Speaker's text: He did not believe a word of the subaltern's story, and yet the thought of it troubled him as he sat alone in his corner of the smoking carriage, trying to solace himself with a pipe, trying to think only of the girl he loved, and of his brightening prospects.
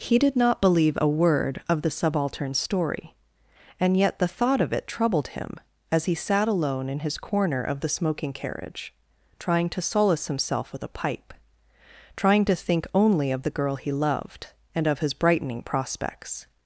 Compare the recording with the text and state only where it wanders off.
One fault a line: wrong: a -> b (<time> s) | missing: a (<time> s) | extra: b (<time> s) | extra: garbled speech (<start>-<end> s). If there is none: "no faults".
no faults